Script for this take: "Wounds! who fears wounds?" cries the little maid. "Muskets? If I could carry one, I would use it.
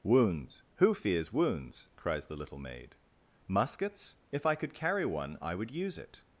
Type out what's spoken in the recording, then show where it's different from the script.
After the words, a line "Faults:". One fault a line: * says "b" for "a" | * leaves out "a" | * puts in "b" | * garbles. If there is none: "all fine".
"Wounds! who fears wounds?" cries the little maid. "Muskets? If I could carry one, I would use it.
Faults:
all fine